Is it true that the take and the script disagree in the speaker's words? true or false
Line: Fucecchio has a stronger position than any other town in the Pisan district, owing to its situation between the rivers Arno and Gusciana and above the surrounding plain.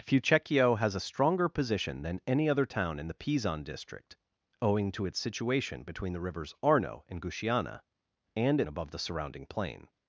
false